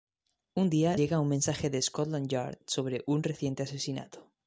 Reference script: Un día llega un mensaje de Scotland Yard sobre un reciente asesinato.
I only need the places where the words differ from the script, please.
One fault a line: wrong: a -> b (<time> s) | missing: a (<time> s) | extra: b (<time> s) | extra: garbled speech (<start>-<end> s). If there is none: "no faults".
no faults